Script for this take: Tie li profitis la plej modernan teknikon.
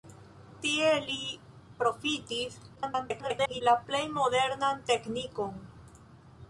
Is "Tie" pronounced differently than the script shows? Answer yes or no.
no